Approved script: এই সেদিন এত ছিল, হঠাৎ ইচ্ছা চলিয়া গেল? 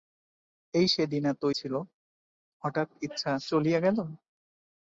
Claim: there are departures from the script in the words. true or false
false